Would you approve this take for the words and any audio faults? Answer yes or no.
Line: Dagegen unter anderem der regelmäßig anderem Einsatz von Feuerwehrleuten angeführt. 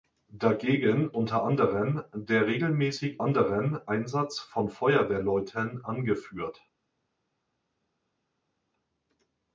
yes